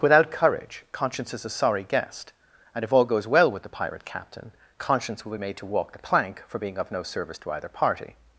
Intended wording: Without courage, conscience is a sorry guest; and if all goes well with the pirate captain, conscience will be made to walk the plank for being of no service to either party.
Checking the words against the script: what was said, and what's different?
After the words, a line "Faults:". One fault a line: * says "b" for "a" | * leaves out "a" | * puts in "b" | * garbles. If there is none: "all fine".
Without courage, conscience is a sorry guest; and if all goes well with the pirate captain, conscience will be made to walk the plank for being of no service to either party.
Faults:
all fine